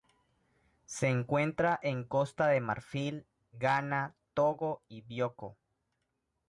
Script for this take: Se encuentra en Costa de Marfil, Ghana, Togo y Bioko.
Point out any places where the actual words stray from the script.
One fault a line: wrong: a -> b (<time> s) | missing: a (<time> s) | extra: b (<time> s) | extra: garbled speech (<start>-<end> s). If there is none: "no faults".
no faults